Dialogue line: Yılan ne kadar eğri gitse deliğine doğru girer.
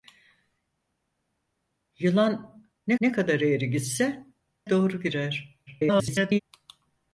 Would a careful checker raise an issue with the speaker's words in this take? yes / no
yes